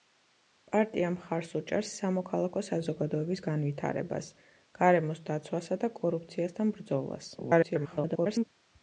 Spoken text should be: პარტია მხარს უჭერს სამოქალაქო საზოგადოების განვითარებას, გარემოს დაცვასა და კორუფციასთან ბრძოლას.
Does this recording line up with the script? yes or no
no